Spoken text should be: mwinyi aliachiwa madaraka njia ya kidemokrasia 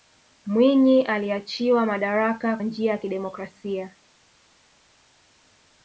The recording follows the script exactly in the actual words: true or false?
true